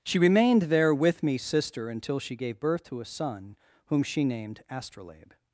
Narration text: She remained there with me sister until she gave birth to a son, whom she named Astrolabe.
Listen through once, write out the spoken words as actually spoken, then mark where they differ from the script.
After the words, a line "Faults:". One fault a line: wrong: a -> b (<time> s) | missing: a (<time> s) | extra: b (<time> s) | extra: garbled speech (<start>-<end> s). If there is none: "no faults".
She remained there with me sister until she gave birth to a son, whom she named Astrolabe.
Faults:
no faults